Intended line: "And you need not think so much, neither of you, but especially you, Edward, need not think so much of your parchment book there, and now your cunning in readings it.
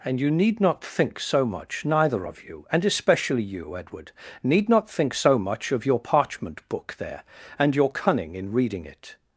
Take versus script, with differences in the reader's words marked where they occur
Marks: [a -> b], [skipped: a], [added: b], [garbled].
"And you need not think so much, neither of you, [but -> and] especially you, Edward, need not think so much of your parchment book there, and [skipped: now] your cunning in [readings -> reading] it.